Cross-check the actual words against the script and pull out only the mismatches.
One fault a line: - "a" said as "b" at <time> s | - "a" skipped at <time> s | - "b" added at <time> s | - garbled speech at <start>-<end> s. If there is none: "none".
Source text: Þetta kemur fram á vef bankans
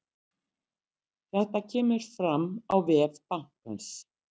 none